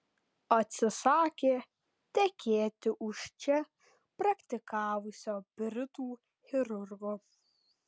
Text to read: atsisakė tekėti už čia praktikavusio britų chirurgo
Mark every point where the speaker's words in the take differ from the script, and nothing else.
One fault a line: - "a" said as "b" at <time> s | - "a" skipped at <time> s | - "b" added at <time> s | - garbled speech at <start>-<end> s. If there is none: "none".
none